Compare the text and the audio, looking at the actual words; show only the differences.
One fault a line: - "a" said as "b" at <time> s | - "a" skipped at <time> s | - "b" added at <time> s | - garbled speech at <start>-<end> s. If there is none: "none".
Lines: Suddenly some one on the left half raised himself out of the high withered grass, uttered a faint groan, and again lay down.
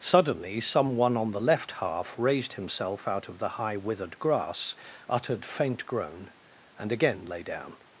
- "a" skipped at 5.5 s